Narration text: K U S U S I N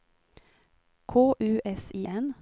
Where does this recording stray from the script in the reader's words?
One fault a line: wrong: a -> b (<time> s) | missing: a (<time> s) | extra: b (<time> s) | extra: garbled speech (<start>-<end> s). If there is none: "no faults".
missing: U S (1.9 s)